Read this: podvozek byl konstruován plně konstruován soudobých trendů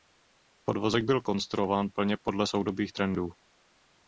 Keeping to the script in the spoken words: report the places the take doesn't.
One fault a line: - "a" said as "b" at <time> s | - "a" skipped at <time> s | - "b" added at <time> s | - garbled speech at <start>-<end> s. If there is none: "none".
- "konstruován" said as "podle" at 2.2 s